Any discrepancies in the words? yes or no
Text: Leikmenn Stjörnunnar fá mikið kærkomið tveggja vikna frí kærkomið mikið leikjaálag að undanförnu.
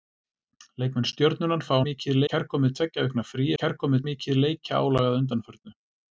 no